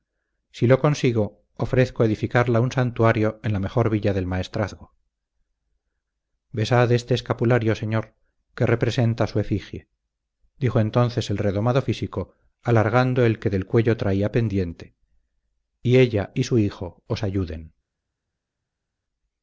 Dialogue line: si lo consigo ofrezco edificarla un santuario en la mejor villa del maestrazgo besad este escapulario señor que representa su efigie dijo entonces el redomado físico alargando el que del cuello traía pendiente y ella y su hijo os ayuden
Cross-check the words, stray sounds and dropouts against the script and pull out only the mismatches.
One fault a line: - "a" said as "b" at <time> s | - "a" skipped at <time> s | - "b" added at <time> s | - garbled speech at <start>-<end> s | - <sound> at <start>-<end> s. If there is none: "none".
none